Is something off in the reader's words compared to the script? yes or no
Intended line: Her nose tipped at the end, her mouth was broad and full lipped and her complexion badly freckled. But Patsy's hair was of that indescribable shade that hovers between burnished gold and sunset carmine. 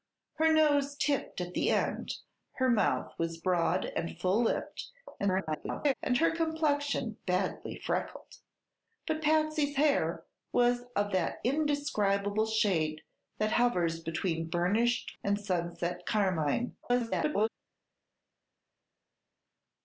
yes